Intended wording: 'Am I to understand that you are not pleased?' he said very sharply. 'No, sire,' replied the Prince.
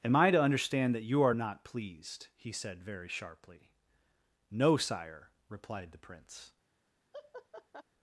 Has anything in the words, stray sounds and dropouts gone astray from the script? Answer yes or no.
yes